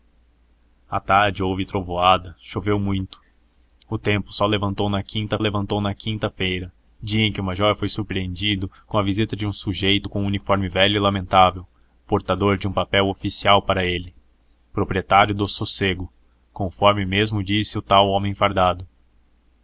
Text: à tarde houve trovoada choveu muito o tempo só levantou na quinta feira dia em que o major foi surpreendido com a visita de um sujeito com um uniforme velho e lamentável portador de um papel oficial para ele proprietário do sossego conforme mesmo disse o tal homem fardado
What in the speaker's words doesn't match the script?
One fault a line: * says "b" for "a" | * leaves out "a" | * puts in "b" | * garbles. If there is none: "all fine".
* puts in "levantou na quinta"